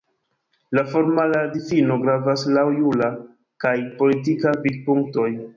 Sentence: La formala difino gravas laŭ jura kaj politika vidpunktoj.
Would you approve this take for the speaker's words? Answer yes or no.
yes